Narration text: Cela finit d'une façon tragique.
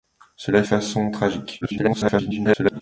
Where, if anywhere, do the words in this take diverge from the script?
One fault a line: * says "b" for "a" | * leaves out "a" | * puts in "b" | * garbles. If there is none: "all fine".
* leaves out "finit d'une"
* garbles